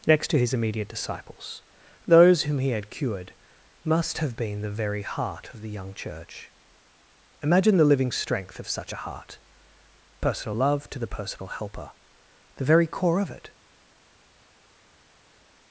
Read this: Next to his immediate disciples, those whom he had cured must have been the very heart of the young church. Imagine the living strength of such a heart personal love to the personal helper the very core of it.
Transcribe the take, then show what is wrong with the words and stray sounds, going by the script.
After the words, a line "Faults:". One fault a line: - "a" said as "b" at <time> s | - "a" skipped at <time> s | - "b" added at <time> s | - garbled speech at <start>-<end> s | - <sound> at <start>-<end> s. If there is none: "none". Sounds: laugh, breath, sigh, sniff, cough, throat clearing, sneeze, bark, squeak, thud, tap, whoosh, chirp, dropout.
Next to his immediate disciples, those whom he had cured must have been the very heart of the young church. Imagine the living strength of such a heart personal love to the personal helper the very core of it.
Faults:
none